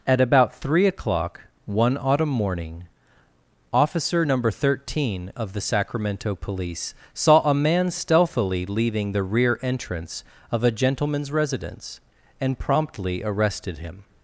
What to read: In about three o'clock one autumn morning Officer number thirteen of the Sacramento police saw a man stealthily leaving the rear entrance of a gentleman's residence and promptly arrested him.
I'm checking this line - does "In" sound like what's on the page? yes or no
no